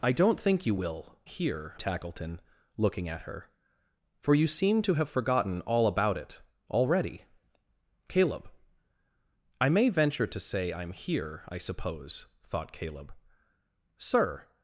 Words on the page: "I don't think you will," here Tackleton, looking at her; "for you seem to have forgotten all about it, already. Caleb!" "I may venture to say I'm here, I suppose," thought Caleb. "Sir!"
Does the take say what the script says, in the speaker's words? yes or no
yes